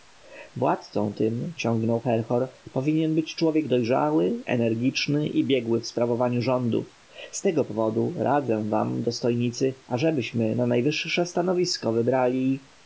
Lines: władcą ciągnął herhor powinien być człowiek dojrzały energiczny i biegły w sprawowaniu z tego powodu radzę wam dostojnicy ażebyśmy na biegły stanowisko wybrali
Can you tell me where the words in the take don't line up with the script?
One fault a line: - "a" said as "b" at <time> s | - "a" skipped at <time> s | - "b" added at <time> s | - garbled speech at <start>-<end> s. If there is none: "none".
- "tym" added at 1.1 s
- "rządów" added at 6.4 s
- "biegły" said as "najwyższe" at 10.7 s